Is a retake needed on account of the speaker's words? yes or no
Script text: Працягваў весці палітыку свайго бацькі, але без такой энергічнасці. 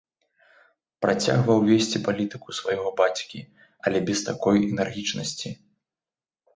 no